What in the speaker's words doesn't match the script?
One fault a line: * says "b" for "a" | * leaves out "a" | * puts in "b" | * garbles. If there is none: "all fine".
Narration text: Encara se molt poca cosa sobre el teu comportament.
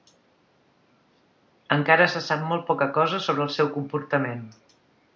* puts in "sap"
* says "seu" for "teu"